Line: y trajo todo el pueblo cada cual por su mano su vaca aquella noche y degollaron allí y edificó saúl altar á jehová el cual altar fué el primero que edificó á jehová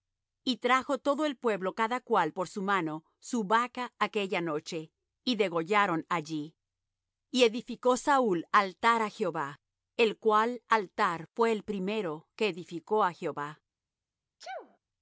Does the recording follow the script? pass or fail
pass